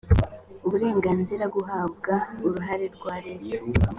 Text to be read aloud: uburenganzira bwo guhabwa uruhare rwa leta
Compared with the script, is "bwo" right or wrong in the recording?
wrong